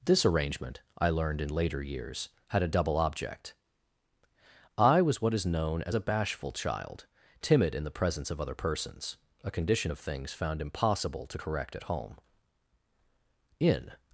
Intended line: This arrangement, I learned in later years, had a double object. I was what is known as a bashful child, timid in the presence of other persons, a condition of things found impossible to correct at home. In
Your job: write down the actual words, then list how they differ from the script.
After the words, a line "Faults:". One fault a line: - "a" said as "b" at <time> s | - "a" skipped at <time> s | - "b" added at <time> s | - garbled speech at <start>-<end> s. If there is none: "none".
This arrangement, I learned in later years, had a double object. I was what is known as a bashful child, timid in the presence of other persons, a condition of things found impossible to correct at home. In
Faults:
none